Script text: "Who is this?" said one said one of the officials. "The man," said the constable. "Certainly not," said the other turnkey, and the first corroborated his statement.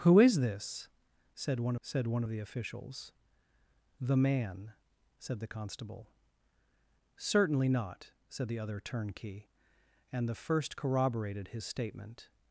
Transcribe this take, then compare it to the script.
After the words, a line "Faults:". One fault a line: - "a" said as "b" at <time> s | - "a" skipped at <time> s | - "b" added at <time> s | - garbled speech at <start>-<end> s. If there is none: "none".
"Who is this?" said one said one of the officials. "The man," said the constable. "Certainly not," said the other turnkey, and the first corroborated his statement.
Faults:
none